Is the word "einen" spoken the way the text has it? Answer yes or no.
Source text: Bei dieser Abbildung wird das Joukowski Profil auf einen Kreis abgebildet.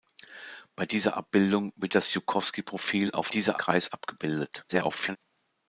no